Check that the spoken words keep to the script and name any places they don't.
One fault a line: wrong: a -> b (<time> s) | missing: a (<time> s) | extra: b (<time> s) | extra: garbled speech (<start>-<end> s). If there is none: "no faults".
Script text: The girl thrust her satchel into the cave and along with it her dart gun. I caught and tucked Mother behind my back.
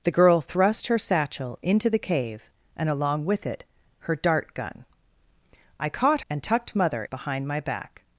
no faults